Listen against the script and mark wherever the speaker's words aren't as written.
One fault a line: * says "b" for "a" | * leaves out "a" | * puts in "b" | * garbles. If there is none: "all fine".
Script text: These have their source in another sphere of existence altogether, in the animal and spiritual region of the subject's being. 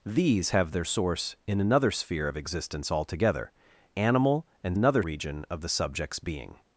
* leaves out "in the"
* says "another" for "spiritual"